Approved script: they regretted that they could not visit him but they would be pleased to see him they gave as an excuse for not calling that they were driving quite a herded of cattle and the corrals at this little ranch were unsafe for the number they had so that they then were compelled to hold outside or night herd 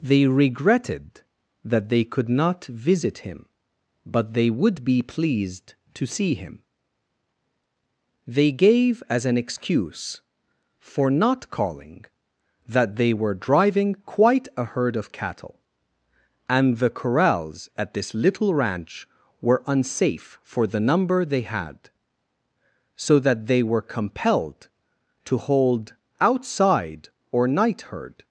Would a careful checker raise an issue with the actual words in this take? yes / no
yes